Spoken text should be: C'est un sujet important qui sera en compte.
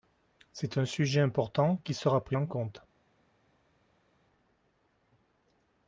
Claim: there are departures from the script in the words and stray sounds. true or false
true